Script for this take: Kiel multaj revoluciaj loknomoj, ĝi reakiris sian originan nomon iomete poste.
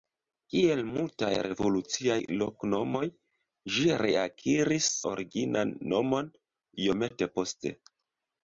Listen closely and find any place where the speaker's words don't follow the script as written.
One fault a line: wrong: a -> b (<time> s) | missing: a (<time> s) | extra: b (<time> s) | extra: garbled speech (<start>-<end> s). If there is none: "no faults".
missing: sian (4.9 s)